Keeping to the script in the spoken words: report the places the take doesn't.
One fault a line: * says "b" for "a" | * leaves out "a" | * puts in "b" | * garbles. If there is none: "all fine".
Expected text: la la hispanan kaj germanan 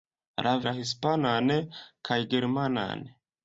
all fine